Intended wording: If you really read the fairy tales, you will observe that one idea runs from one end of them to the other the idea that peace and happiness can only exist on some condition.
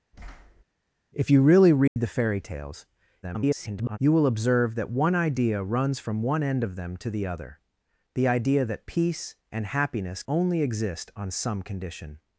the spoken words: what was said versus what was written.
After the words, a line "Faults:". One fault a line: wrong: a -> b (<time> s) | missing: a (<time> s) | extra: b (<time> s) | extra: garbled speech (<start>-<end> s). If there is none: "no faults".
If you really read the fairy tales, [garbled] you will observe that one idea runs from one end of them to the other the idea that peace and happiness only exist on some condition.
Faults:
extra: garbled speech (3.2-4.0 s)
missing: can (10.2 s)